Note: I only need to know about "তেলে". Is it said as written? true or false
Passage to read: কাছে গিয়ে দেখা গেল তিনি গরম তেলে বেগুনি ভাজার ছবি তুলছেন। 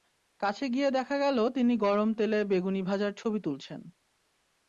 true